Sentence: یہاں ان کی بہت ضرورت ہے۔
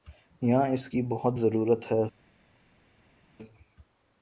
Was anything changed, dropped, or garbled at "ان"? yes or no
yes